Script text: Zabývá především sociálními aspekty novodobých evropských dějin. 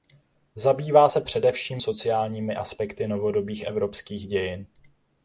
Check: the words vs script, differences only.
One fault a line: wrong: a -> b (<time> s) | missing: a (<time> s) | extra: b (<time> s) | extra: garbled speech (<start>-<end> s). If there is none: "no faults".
extra: se (1.1 s)